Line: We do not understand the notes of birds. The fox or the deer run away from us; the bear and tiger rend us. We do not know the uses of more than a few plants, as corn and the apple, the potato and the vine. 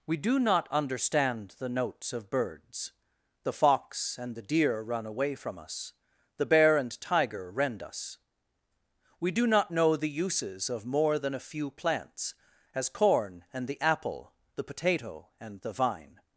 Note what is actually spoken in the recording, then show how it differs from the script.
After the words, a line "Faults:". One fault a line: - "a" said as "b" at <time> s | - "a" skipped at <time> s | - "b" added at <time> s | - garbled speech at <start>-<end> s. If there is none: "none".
We do not understand the notes of birds. The fox and the deer run away from us; the bear and tiger rend us. We do not know the uses of more than a few plants, as corn and the apple, the potato and the vine.
Faults:
- "or" said as "and" at 4.2 s